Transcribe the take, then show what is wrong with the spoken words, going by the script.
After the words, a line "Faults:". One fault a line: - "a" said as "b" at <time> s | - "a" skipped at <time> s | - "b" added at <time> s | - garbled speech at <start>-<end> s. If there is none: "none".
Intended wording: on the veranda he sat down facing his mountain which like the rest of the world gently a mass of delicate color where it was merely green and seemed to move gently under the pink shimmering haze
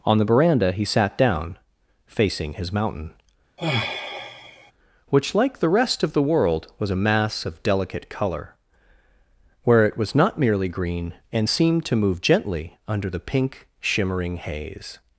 on the veranda he sat down facing his mountain which like the rest of the world was a mass of delicate color where it was not merely green and seemed to move gently under the pink shimmering haze
Faults:
- "gently" said as "was" at 6.8 s
- "not" added at 10.1 s